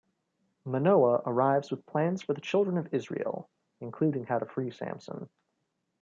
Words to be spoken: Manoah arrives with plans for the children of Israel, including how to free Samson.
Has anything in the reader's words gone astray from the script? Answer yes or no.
no